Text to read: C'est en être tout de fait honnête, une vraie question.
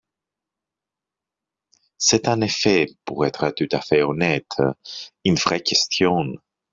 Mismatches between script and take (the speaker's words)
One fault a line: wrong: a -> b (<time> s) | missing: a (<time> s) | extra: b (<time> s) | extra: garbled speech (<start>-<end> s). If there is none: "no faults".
extra: effet pour (2.4 s)
wrong: de -> à (3.7 s)